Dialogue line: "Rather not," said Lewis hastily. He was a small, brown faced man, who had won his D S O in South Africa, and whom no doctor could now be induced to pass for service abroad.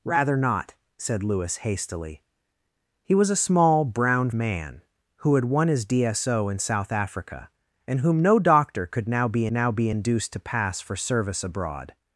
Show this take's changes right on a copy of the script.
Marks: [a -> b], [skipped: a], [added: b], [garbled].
"Rather not," said Lewis hastily. He was a small, brown [skipped: faced] man, who had won his D S O in South Africa, and whom no doctor could now be [added: now be] induced to pass for service abroad.